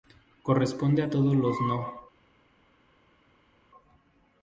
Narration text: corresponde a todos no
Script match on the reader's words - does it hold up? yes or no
no